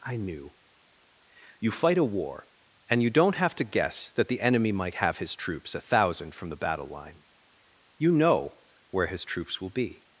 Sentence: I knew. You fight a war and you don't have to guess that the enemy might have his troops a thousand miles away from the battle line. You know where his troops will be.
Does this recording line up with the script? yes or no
no